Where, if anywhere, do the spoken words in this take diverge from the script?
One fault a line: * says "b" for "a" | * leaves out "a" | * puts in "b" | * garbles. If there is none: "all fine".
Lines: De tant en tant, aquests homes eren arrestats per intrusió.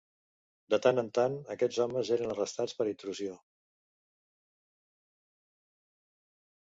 all fine